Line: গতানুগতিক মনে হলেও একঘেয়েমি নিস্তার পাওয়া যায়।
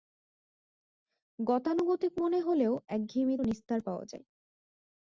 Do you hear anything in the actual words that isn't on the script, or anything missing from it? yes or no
no